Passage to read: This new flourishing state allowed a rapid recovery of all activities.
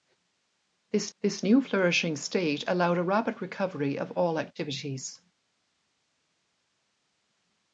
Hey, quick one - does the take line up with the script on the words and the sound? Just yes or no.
no